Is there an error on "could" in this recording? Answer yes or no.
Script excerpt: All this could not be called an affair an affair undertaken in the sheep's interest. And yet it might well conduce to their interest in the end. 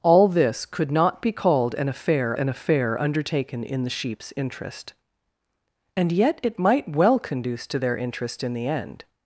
no